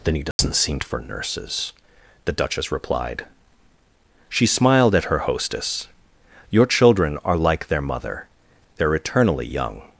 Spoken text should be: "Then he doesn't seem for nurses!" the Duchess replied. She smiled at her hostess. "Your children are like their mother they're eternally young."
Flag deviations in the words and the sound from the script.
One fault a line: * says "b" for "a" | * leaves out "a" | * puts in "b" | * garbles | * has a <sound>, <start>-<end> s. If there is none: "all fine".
* has a dropout, 0.3-0.4 s